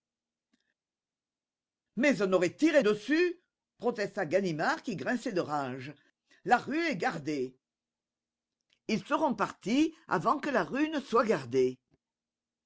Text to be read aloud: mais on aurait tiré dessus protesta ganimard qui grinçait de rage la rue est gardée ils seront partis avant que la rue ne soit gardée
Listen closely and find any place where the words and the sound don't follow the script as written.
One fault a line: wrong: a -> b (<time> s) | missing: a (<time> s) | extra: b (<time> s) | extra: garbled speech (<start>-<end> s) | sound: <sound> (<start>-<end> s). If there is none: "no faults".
no faults